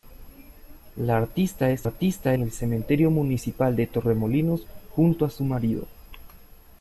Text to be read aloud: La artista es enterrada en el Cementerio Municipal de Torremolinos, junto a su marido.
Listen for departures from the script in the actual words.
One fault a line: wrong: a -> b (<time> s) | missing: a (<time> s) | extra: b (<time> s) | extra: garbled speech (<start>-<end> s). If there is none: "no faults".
wrong: enterrada -> artista (1.8 s)